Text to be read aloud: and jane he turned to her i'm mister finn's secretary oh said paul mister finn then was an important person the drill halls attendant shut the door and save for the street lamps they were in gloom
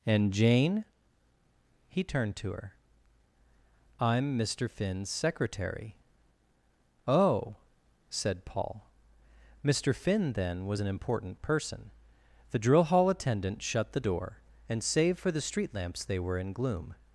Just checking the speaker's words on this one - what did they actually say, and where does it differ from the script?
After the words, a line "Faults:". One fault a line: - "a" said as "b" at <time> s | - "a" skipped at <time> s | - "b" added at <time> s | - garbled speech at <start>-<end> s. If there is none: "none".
and jane he turned to her i'm mister finn's secretary oh said paul mister finn then was an important person the drill hall attendant shut the door and save for the street lamps they were in gloom
Faults:
- "halls" said as "hall" at 12.8 s